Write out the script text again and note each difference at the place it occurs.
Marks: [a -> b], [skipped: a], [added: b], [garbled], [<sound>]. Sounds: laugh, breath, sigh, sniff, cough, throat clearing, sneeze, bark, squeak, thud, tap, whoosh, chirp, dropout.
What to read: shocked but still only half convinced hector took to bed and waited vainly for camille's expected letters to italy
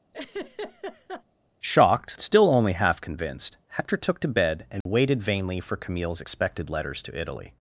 [laugh] shocked [skipped: but] still only half convinced hector took to bed and [dropout] waited vainly for camille's expected letters to italy